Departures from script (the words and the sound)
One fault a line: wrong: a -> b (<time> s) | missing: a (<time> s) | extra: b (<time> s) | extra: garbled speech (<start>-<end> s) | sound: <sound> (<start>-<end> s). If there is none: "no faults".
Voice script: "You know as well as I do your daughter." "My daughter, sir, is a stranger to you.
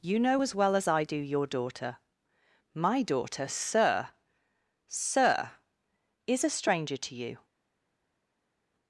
extra: sir (4.9 s)